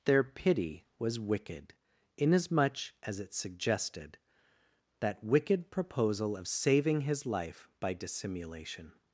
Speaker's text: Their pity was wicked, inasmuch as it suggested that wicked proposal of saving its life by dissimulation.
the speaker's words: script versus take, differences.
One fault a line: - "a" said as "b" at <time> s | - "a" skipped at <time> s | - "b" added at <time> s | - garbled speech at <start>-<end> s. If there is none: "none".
- "its" said as "his" at 7.0 s